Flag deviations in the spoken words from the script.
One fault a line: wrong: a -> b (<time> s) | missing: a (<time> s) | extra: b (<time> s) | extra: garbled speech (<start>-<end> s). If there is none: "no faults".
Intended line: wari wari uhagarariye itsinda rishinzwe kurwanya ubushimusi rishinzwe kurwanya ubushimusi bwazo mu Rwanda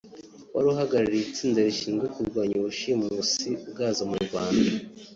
missing: wari (0.7 s)
missing: rishinzwe kurwanya ubushimusi (3.5 s)